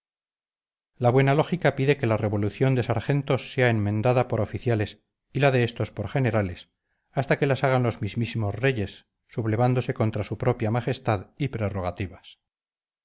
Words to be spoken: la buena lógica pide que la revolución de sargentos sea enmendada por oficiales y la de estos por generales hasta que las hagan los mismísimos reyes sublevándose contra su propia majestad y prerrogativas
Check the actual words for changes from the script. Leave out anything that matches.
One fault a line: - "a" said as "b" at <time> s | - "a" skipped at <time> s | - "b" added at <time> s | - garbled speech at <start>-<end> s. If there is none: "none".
none